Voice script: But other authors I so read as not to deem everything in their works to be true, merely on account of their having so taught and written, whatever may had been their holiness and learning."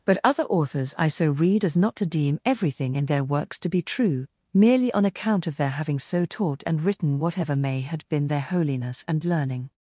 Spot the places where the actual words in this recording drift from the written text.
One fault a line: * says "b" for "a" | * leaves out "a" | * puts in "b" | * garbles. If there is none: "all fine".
all fine